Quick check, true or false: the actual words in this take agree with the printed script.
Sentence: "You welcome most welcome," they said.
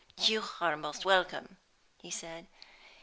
false